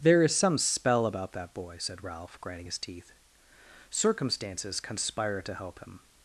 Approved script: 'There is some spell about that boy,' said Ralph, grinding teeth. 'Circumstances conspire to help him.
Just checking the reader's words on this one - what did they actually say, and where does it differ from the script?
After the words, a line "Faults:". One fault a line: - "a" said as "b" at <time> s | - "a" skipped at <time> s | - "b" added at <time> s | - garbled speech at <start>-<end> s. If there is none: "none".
'There is some spell about that boy,' said Ralph, grinding his teeth. 'Circumstances conspire to help him.
Faults:
- "his" added at 2.6 s